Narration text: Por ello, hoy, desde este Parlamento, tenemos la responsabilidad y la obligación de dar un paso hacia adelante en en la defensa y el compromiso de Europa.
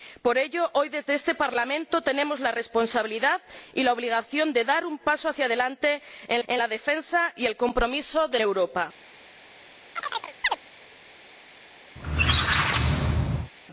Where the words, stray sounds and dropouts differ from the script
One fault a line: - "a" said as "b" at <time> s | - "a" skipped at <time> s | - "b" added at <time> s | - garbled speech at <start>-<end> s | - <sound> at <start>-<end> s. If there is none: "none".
- chirp at 10.0-10.6 s
- squeak at 12.0-13.5 s